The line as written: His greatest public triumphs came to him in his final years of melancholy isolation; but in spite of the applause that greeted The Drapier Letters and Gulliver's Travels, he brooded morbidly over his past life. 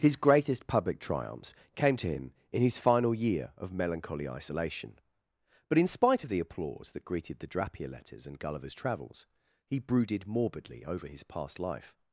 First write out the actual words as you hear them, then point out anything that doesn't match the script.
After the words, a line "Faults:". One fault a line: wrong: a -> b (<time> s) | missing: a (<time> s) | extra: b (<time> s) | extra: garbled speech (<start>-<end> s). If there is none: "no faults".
His greatest public triumphs came to him in his final year of melancholy isolation; but in spite of the applause that greeted The Drapier Letters and Gulliver's Travels, he brooded morbidly over his past life.
Faults:
wrong: years -> year (3.1 s)